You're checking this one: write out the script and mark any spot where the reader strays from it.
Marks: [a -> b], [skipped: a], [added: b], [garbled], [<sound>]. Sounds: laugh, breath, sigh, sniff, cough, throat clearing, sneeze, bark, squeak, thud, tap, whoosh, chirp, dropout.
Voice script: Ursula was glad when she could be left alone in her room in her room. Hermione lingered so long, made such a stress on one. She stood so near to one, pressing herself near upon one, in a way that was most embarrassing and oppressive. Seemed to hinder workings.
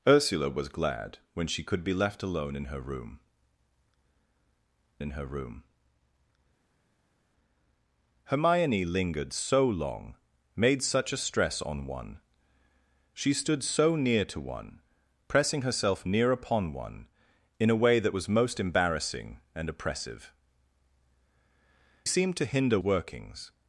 Ursula was glad when she could be left alone in her room in her room. Hermione lingered so long, made such a stress on one. She stood so near to one, pressing herself near upon one, in a way that was most embarrassing and oppressive. Seemed to hinder workings.